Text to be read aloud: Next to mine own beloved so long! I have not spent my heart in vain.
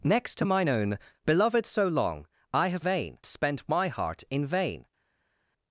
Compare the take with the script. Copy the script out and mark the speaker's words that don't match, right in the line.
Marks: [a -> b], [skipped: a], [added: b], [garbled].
Next to mine own beloved so long! I have [not -> vain] spent my heart in vain.